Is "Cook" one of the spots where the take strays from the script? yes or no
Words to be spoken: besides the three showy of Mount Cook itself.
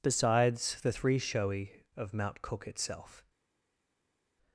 no